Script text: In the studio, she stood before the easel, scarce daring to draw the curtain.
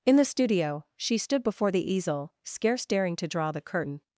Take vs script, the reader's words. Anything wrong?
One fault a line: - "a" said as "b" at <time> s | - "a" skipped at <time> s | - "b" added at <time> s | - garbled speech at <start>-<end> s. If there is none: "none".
none